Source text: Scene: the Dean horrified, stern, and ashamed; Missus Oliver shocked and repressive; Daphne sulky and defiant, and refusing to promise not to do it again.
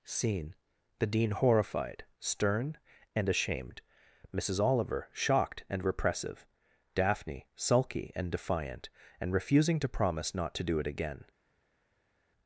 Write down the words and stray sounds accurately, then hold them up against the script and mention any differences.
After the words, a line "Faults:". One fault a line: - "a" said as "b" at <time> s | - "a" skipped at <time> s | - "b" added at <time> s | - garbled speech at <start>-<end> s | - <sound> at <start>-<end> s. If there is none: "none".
Scene: the Dean horrified, stern, and ashamed; Missus Oliver shocked and repressive; Daphne sulky and defiant, and refusing to promise not to do it again.
Faults:
none